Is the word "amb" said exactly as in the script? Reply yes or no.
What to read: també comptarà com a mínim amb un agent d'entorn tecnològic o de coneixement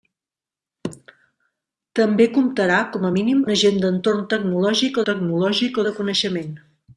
no